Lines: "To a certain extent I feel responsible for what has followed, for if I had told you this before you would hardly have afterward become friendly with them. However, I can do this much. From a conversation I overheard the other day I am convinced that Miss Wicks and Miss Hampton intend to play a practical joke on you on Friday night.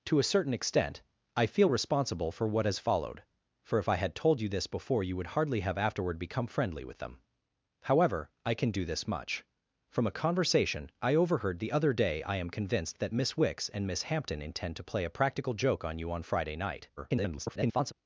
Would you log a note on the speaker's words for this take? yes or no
yes